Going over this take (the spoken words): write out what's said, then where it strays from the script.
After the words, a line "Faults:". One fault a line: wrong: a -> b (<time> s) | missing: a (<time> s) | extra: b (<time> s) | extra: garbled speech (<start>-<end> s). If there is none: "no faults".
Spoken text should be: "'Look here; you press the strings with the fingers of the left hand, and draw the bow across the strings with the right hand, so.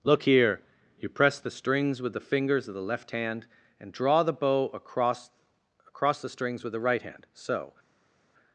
"'Look here; you press the strings with the fingers of the left hand, and draw the bow across across the strings with the right hand, so.
Faults:
extra: across (5.9 s)